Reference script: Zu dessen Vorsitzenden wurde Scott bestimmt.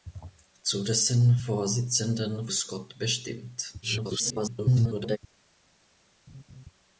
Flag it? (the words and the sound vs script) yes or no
yes